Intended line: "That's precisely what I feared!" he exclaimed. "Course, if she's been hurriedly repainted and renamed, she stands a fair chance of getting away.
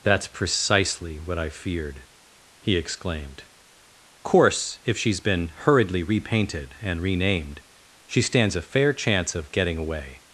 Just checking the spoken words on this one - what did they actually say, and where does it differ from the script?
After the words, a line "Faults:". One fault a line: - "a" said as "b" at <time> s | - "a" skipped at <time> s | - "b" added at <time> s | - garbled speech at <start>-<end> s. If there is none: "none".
"That's precisely what I feared!" he exclaimed. "Course, if she's been hurriedly repainted and renamed, she stands a fair chance of getting away.
Faults:
none